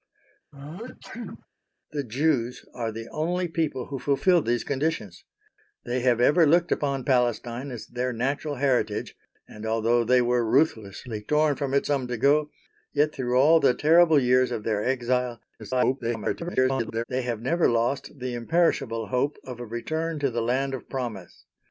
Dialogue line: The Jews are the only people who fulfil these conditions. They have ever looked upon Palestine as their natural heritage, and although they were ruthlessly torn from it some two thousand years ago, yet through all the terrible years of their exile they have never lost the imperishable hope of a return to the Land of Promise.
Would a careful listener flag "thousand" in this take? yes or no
yes